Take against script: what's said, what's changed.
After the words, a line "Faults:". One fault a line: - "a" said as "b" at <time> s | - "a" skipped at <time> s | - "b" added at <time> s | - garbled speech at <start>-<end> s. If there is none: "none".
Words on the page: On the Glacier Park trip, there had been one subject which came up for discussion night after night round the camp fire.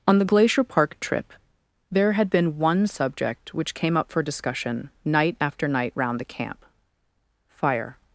On the Glacier Park trip, there had been one subject which came up for discussion night after night round the camp fire.
Faults:
none